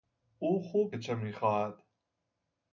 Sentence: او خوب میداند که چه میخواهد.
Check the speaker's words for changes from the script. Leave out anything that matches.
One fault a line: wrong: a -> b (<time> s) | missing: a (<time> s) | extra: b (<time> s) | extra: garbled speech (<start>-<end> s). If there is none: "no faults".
missing: میداند (0.9 s)